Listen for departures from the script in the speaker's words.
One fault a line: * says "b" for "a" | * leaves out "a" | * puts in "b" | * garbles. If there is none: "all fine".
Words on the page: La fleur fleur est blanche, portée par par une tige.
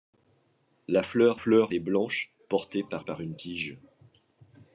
all fine